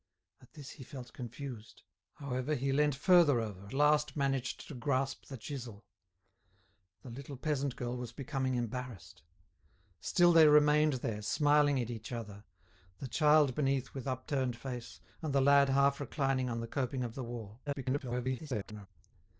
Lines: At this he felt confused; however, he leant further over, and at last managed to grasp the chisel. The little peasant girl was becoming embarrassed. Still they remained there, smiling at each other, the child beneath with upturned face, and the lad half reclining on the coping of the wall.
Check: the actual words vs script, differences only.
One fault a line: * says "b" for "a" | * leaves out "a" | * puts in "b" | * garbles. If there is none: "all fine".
* leaves out "and at"
* garbles